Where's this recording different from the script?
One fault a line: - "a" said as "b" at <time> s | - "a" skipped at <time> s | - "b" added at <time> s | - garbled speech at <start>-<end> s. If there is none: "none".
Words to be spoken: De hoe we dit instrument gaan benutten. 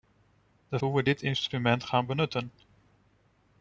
none